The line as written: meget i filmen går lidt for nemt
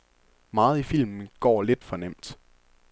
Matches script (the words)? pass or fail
pass